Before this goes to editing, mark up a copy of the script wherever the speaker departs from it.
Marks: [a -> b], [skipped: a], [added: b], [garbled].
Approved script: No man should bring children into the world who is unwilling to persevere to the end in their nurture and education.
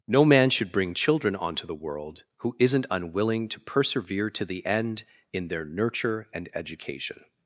No man should bring children [into -> onto] the world who [is -> isn't] unwilling to persevere to the end in their nurture and education.